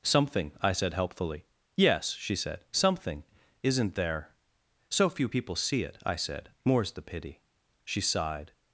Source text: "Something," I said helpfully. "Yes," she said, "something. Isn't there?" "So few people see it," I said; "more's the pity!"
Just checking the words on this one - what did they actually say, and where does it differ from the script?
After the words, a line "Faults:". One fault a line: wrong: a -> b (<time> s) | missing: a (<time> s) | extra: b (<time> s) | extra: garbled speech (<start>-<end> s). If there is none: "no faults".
"Something," I said helpfully. "Yes," she said, "something. Isn't there?" "So few people see it," I said; "more's the pity!" She sighed
Faults:
extra: She sighed (7.8 s)